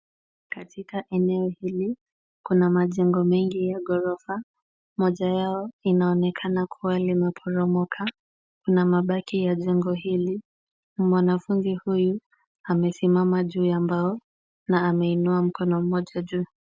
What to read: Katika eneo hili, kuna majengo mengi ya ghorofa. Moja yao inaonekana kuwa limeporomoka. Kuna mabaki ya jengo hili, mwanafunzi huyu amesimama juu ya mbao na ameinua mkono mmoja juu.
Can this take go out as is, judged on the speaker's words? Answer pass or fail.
pass